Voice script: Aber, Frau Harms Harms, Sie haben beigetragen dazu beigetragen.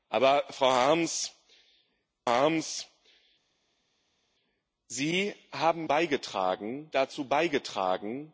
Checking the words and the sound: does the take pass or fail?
pass